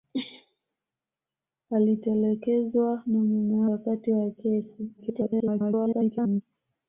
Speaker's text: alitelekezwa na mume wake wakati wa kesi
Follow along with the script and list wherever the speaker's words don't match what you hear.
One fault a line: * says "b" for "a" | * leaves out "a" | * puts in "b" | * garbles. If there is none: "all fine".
* leaves out "wake"
* garbles